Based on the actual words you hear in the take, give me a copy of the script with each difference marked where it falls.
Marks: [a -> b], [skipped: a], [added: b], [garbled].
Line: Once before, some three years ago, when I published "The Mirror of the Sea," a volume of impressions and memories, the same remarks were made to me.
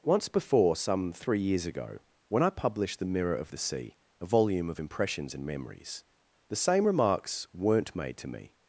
Once before, some three years ago, when I published "The Mirror of the Sea," a volume of impressions and memories, the same remarks [were -> weren't] made to me.